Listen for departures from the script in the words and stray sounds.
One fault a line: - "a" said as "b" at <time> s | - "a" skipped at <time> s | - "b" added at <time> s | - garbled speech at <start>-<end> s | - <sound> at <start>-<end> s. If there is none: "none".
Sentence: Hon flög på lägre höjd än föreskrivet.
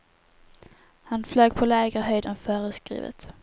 - "Hon" said as "Han" at 1.0 s